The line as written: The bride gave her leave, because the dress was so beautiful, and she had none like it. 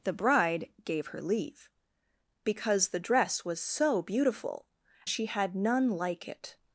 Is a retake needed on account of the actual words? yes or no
yes